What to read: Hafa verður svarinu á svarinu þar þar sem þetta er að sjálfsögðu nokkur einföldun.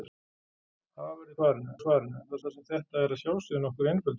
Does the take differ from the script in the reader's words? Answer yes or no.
no